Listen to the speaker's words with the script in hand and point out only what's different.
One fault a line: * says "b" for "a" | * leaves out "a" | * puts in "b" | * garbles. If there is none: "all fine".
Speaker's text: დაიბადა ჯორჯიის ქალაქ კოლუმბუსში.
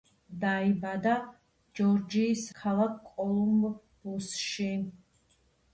all fine